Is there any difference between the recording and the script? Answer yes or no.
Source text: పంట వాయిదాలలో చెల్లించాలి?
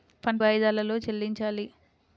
no